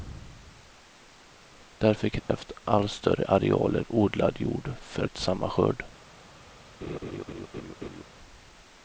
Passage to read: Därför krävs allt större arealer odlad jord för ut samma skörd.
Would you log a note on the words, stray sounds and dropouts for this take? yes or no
yes